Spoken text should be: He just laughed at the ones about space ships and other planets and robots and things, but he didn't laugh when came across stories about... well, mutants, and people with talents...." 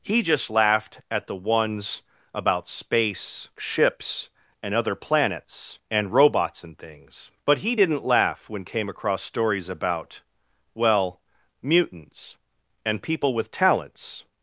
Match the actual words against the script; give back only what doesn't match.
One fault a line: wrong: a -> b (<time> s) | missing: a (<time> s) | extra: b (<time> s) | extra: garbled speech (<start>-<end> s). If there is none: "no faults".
no faults